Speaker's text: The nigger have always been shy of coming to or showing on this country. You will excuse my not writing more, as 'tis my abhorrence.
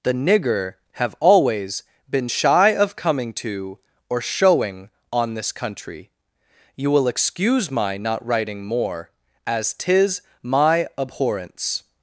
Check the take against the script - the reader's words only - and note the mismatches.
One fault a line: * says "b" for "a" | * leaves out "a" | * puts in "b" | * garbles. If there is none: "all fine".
all fine